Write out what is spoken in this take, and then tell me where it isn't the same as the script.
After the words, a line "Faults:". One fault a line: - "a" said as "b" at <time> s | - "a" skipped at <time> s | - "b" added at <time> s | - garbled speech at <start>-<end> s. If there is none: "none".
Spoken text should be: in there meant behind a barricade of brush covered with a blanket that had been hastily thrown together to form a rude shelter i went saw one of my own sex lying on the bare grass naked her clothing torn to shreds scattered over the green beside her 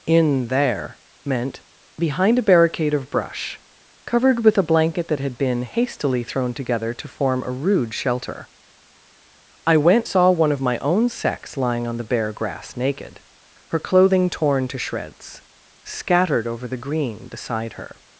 in there meant behind a barricade of brush covered with a blanket that had been hastily thrown together to form a rude shelter i went saw one of my own sex lying on the bare grass naked her clothing torn to shreds scattered over the green beside her
Faults:
none